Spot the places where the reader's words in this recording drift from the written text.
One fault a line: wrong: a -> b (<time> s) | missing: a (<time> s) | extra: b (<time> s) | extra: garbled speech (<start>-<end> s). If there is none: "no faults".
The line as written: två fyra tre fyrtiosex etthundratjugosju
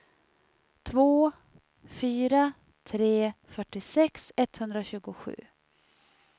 no faults